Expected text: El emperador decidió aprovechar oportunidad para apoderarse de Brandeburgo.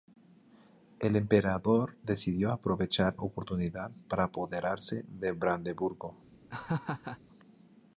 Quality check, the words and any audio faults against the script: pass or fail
fail